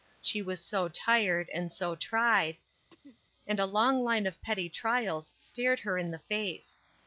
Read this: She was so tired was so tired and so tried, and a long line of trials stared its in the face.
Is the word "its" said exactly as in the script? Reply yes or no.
no